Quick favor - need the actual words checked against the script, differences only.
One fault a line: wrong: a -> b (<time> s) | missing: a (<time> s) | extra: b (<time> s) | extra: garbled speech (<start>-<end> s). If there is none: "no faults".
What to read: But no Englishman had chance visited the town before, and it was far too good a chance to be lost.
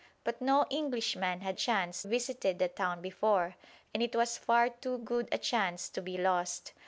no faults